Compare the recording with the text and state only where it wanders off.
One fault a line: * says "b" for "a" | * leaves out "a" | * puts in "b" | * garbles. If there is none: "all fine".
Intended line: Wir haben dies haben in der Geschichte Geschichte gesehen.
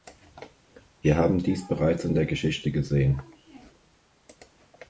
* says "bereits" for "haben"
* leaves out "Geschichte"